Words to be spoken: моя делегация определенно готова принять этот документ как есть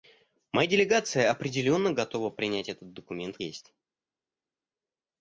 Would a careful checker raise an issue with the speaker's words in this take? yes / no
yes